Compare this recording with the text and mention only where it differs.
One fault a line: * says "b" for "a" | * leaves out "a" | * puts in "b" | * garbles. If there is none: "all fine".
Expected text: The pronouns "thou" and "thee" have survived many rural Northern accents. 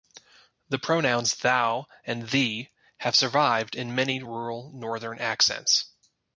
* puts in "in"